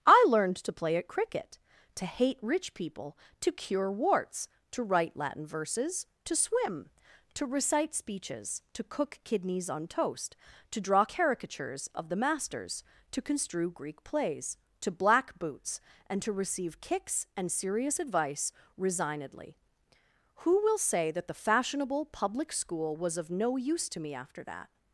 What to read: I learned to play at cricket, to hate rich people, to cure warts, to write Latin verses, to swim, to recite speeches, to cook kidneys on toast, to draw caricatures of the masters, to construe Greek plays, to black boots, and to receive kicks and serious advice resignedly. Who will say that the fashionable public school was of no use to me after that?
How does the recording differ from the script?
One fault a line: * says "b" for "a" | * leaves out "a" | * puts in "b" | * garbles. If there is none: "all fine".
all fine